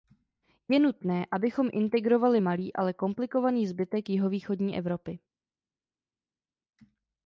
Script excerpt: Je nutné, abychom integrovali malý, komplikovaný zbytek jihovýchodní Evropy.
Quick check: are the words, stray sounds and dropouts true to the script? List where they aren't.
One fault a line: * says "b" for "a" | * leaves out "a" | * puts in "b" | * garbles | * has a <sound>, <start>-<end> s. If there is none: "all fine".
* puts in "ale"